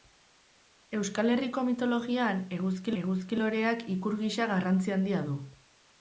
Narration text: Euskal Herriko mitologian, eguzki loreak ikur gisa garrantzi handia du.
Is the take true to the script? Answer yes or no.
no